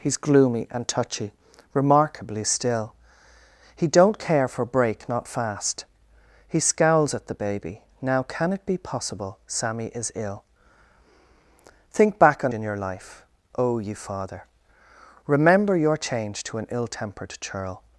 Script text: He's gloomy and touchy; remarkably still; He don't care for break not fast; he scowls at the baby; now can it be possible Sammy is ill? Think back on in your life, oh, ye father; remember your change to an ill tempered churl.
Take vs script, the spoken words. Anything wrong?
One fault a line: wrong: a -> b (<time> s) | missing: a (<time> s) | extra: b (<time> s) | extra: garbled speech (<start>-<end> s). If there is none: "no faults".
no faults